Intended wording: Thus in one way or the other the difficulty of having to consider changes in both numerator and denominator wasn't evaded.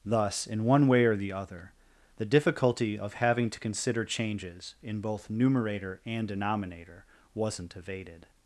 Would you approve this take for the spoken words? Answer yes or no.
yes